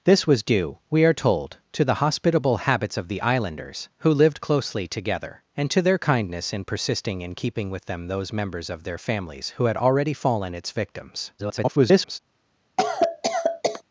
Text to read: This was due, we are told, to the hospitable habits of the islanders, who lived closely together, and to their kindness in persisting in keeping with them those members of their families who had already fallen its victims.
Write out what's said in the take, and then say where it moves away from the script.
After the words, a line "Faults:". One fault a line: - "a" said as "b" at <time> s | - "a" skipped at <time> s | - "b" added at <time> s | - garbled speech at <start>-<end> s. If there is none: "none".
This was due, we are told, to the hospitable habits of the islanders, who lived closely together, and to their kindness in persisting in keeping with them those members of their families who had already fallen its victims. [garbled]
Faults:
- garbled speech at 11.4-12.2 s